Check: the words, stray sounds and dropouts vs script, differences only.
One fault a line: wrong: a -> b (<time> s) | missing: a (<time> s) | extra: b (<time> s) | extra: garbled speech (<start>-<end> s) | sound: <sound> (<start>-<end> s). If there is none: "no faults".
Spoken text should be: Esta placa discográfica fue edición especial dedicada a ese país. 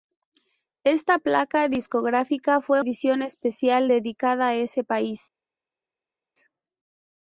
no faults